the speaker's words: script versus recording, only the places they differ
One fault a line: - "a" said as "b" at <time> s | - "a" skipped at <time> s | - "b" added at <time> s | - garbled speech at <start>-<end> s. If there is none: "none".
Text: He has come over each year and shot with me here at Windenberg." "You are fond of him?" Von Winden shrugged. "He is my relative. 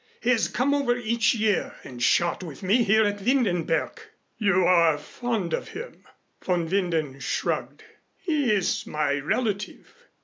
none